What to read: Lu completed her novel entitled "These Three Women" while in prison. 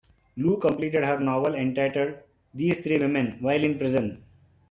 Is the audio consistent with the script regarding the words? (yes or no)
yes